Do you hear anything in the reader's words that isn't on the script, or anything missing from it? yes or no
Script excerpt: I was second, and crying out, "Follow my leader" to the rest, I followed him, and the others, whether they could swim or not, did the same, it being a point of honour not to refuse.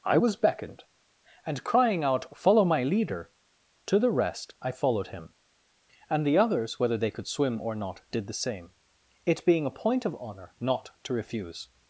yes